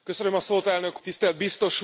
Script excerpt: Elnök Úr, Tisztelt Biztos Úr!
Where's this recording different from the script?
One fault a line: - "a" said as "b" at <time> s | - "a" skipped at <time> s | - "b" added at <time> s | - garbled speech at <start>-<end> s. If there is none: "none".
- "Úr" skipped at 1.0 s